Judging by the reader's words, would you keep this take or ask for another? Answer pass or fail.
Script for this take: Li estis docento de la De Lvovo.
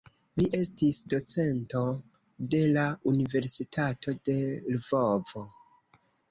fail